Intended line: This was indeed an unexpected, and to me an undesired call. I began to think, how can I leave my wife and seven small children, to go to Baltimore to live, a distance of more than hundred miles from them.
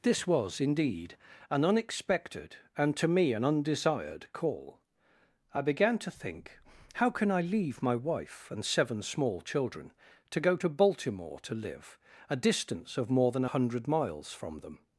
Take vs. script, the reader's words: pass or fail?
pass